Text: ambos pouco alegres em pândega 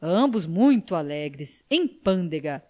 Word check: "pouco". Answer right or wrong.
wrong